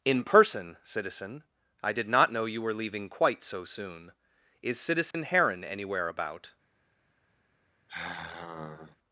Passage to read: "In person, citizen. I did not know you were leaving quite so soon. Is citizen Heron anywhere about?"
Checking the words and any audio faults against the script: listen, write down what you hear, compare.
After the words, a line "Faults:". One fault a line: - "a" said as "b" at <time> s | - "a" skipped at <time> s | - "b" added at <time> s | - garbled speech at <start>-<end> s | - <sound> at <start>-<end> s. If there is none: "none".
"In person, citizen. I did not know you were leaving quite so soon. Is citizen Heron anywhere about?"
Faults:
- dropout at 5.1-5.1 s
- sigh at 7.9-9.0 s